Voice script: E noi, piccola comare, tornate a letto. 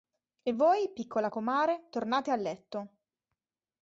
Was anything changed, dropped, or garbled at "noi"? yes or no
yes